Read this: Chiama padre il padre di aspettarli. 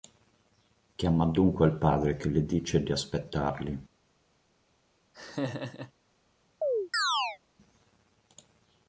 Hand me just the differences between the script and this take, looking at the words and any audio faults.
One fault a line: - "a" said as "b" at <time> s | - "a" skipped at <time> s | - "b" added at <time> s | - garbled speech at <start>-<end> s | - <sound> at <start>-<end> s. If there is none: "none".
- "padre" said as "dunque" at 1.2 s
- "che le dice" added at 2.2 s
- laugh at 5.1-5.9 s
- chirp at 6.6-7.4 s